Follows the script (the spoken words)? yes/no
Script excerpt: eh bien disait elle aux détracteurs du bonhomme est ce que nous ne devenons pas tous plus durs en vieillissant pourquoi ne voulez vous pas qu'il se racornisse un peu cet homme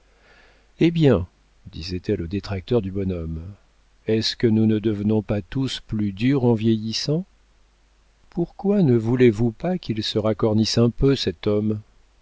yes